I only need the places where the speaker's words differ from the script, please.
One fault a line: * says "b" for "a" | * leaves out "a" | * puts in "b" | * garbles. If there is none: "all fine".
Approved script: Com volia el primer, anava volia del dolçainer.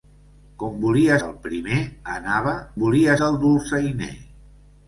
all fine